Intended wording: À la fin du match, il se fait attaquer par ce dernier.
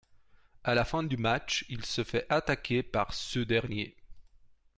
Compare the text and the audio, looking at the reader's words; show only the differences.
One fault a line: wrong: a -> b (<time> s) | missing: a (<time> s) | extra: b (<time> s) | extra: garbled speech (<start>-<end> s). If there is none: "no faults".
no faults